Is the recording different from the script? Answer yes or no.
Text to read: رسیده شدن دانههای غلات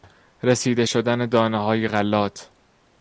no